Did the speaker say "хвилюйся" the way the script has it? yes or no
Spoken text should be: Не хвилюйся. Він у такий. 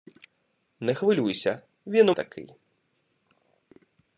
yes